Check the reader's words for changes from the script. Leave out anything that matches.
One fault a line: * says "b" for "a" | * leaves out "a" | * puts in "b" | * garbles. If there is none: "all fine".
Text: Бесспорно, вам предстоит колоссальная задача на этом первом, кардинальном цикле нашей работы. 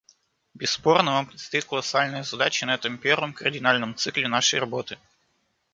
all fine